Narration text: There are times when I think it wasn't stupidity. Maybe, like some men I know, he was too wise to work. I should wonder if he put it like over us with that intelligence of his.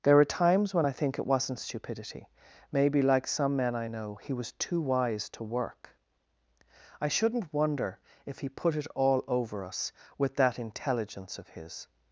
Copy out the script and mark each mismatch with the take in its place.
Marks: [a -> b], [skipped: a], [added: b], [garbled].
There are times when I think it wasn't stupidity. Maybe, like some men I know, he was too wise to work. I [should -> shouldn't] wonder if he put it [like -> all] over us with that intelligence of his.